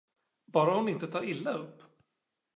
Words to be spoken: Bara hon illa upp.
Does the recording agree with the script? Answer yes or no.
no